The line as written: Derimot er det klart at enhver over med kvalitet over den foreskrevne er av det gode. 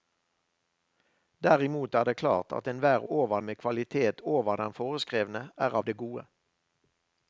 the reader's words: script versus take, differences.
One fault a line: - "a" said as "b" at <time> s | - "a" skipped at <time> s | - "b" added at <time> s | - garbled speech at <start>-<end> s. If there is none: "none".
none